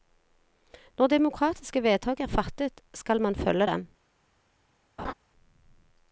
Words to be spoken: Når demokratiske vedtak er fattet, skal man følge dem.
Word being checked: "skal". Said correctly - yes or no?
yes